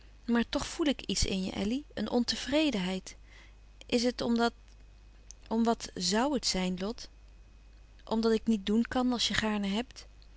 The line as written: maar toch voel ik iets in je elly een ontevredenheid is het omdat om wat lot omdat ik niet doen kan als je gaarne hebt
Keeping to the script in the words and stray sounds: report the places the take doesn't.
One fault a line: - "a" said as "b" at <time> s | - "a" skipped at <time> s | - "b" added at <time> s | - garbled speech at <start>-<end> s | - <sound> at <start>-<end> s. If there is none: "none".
- "zoû het zijn" added at 6.0 s